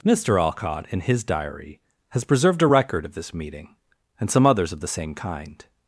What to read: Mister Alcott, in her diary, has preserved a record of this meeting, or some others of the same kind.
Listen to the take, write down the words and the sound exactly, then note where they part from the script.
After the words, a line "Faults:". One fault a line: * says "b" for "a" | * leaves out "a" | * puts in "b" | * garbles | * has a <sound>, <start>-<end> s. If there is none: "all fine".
Mister Alcott, in his diary, has preserved a record of this meeting, and some others of the same kind.
Faults:
* says "his" for "her"
* says "and" for "or"